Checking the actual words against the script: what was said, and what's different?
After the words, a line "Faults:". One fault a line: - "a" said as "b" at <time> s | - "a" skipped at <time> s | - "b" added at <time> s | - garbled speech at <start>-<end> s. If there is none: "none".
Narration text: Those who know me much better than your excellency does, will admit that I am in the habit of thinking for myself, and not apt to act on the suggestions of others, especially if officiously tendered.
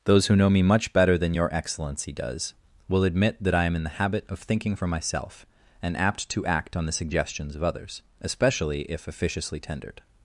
Those who know me much better than your excellency does, will admit that I am in the habit of thinking for myself, and apt to act on the suggestions of others, especially if officiously tendered.
Faults:
- "not" skipped at 6.0 s